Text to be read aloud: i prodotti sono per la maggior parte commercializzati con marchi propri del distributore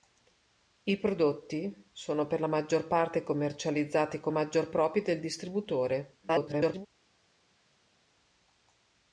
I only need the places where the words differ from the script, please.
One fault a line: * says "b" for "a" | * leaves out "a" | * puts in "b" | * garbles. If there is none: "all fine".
* says "maggior" for "marchi"
* garbles